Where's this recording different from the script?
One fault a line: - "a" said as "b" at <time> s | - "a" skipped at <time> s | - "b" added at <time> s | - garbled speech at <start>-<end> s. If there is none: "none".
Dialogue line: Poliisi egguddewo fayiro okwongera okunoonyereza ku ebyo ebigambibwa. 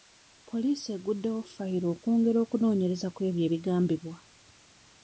none